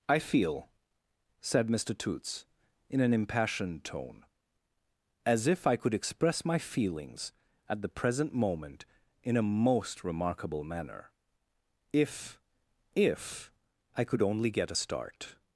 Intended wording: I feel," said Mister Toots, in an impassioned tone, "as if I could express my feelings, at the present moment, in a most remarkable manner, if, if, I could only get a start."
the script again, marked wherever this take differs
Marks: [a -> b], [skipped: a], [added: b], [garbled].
I feel," said Mister Toots, in an impassioned tone, "as if I could express my feelings, at the present moment, in a most remarkable manner, if, if, I could only get a start."